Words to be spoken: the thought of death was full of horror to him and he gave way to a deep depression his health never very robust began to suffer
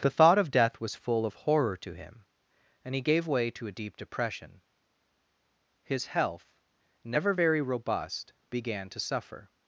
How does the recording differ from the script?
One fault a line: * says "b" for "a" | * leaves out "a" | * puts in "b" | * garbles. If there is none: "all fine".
all fine